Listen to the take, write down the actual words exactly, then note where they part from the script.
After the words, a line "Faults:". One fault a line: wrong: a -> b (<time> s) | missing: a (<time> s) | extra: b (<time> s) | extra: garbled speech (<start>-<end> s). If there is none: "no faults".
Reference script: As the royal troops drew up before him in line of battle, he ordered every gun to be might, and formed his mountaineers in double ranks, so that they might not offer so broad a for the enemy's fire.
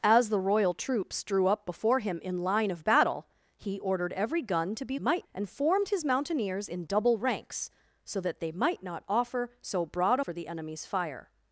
As the royal troops drew up before him in line of battle, he ordered every gun to be might, and formed his mountaineers in double ranks, so that they might not offer so broad a for the enemy's fire.
Faults:
no faults